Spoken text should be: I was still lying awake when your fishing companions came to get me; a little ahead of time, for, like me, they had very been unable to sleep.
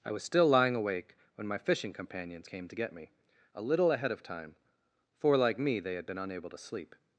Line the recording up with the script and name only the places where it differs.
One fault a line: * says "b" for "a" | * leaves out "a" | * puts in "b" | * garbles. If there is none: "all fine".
* says "my" for "your"
* leaves out "very"